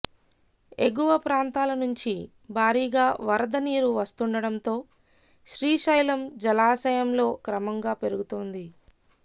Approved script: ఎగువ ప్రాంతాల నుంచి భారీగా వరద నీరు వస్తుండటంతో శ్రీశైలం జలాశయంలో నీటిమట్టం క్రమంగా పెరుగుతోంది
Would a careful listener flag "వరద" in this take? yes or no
no